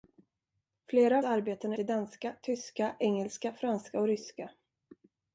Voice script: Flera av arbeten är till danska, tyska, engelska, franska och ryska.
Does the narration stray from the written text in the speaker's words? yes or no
no